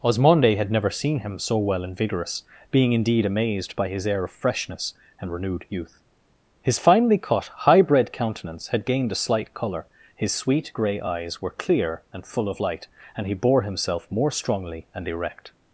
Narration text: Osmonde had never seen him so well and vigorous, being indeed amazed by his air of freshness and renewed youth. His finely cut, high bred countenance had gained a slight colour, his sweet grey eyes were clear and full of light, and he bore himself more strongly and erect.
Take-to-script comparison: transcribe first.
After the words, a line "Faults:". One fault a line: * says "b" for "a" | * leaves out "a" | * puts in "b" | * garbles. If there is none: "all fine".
Osmonde had never seen him so well and vigorous, being indeed amazed by his air of freshness and renewed youth. His finely cut, high bred countenance had gained a slight colour, his sweet grey eyes were clear and full of light, and he bore himself more strongly and erect.
Faults:
all fine